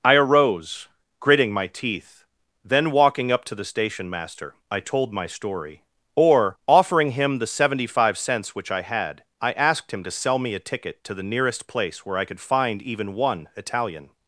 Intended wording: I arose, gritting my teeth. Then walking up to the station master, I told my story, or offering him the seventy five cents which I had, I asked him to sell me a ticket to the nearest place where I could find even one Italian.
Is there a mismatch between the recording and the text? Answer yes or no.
no